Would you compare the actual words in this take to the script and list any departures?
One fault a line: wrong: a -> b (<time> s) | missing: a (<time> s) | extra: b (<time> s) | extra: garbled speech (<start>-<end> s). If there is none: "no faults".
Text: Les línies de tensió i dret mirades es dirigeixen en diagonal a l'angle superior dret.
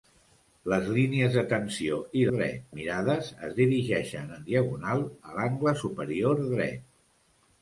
no faults